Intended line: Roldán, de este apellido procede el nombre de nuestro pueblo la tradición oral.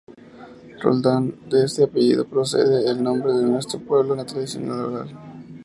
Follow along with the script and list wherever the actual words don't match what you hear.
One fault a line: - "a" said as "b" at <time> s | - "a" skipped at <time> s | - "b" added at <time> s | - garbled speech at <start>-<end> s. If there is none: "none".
none